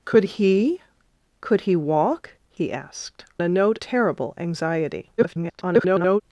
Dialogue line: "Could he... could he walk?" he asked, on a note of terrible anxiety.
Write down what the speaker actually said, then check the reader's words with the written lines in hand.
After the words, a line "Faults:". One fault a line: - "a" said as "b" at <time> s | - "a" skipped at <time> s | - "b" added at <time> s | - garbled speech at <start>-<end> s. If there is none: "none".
"Could he... could he walk?" he asked, a note terrible anxiety. [garbled]
Faults:
- "on" skipped at 3.2 s
- "of" skipped at 3.8 s
- garbled speech at 5.2-6.2 s